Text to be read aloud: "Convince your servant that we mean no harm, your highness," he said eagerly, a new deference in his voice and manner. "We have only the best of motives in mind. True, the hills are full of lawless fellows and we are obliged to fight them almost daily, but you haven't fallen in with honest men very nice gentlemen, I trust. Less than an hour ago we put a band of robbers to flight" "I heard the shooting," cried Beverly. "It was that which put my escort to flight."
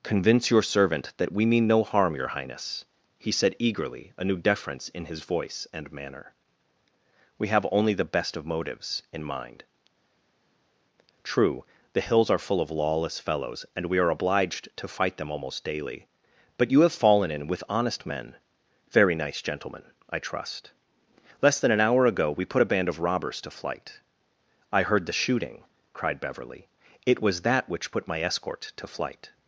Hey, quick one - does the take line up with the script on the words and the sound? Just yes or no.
no